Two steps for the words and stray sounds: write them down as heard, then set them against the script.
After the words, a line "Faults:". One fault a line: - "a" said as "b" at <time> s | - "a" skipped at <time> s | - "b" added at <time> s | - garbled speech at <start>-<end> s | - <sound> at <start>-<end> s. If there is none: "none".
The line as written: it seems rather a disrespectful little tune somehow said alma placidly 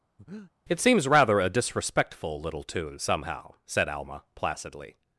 it seems rather a disrespectful little tune somehow said alma placidly
Faults:
- breath at 0.2-0.5 s